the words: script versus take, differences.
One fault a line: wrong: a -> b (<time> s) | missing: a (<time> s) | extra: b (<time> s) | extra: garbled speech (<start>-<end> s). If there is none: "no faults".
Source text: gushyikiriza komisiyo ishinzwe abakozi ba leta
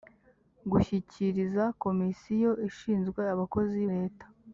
missing: ba (3.8 s)